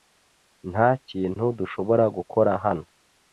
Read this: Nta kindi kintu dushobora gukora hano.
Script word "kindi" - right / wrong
wrong